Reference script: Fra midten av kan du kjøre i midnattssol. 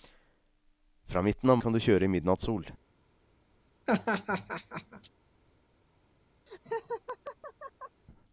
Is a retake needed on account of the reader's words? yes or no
no